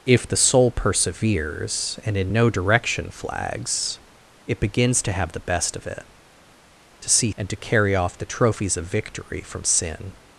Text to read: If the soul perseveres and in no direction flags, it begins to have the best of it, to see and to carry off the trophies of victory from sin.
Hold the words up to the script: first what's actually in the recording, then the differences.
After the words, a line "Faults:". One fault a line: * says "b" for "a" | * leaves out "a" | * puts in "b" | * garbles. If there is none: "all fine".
If the soul perseveres and in no direction flags, it begins to have the best of it, to see and to carry off the trophies of victory from sin.
Faults:
all fine